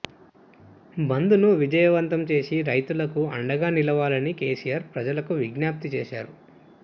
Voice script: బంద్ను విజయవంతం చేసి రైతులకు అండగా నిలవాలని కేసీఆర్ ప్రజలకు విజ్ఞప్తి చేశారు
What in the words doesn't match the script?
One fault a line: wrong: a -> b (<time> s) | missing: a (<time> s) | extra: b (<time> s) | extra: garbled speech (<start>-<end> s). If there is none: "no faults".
no faults